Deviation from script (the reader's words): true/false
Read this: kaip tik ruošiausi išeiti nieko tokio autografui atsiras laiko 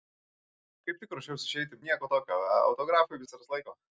false